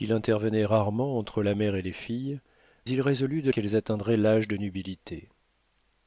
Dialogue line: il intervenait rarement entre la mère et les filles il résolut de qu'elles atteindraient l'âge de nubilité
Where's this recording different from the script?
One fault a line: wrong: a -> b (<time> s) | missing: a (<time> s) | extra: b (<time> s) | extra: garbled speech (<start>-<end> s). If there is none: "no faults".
no faults